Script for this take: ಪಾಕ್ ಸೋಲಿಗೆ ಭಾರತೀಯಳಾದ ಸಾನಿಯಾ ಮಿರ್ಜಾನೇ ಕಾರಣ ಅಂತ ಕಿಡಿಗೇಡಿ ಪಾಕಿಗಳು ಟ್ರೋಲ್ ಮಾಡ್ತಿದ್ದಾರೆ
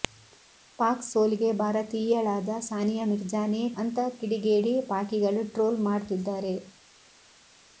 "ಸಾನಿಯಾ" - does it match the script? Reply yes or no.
yes